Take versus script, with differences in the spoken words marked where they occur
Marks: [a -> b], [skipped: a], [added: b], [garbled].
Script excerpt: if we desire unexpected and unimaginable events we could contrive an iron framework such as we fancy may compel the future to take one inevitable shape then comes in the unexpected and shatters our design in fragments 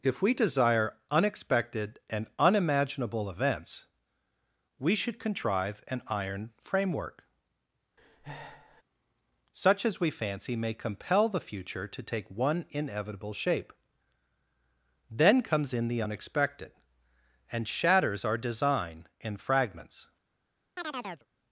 if we desire unexpected and unimaginable events we [could -> should] contrive an iron framework such as we fancy may compel the future to take one inevitable shape then comes in the unexpected and shatters our design in fragments